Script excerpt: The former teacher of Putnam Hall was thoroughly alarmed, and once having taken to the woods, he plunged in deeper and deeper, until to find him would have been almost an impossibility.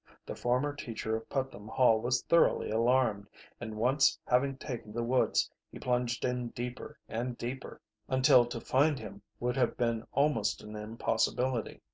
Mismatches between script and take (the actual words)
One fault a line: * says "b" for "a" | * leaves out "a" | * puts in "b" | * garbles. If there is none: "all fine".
* leaves out "to"